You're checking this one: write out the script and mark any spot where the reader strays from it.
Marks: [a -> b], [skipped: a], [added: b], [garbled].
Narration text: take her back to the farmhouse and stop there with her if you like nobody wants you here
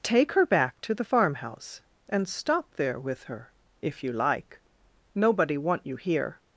take her back to the farmhouse and stop there with her if you like nobody [wants -> want] you here